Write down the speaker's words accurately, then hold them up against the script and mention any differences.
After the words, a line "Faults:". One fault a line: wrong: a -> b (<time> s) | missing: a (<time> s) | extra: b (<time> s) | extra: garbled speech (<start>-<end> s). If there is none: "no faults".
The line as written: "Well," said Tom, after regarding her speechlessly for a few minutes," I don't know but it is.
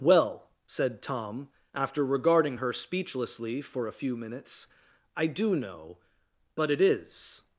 "Well," said Tom, after regarding her speechlessly for a few minutes," I do know but it is.
Faults:
wrong: don't -> do (5.3 s)